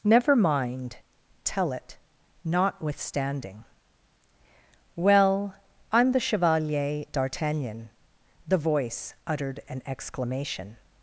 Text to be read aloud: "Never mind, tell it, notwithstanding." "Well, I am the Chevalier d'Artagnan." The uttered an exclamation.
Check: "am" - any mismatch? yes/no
no